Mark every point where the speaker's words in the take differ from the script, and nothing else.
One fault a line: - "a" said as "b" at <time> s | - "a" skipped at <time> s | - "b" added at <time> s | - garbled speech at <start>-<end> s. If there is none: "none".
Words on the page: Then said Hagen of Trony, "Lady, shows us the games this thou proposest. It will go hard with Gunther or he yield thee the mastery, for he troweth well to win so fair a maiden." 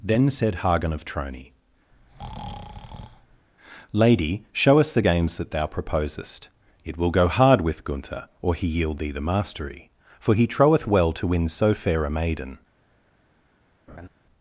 - "shows" said as "show" at 4.5 s
- "this" said as "that" at 5.4 s